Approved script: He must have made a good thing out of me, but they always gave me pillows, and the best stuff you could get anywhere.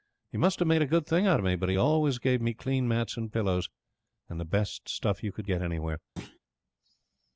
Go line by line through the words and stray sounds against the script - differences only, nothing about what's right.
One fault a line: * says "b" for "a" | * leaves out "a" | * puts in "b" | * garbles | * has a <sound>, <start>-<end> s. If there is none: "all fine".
* says "he" for "they"
* puts in "clean mats and"
* has a thud, 6.2-6.4 s